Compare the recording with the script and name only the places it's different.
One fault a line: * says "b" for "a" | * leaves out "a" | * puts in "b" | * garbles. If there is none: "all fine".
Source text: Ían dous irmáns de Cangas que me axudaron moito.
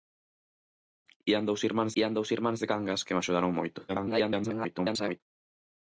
* puts in "ían dous irmáns"
* garbles